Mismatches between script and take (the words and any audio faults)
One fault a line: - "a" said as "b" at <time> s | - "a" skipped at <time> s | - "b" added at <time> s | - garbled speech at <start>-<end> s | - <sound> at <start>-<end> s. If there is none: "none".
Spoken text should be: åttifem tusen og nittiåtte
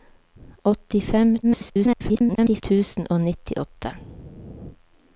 - garbled speech at 1.4-2.6 s